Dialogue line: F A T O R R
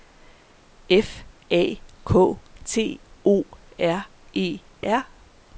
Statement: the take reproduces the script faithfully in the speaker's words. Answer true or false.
false